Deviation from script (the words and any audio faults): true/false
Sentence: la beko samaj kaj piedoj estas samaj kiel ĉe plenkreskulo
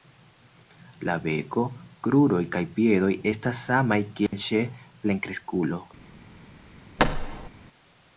true